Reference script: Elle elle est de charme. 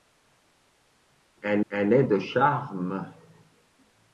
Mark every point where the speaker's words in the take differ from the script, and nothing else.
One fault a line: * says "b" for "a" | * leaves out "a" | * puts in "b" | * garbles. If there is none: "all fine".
all fine